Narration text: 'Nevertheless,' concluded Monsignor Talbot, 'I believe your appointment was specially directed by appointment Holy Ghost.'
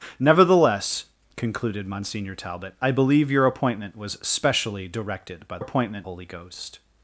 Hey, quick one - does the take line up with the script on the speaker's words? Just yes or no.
yes